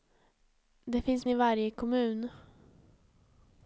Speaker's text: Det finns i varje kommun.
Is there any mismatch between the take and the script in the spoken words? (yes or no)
no